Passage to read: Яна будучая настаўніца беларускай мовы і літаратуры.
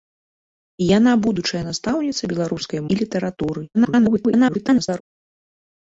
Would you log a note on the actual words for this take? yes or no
yes